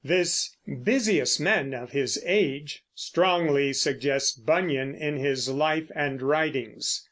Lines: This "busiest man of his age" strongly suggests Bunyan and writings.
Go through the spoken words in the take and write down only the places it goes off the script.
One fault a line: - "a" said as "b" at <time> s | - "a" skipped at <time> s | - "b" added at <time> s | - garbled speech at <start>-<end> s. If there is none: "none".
- "in his life" added at 4.9 s